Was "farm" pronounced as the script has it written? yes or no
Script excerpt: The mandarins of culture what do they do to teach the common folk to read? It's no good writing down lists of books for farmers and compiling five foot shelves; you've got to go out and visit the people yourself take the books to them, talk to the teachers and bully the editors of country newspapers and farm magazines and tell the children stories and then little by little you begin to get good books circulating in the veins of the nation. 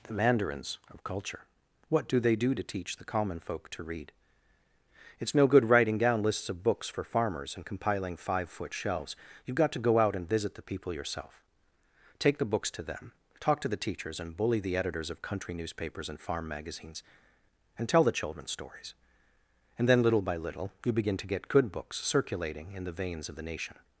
yes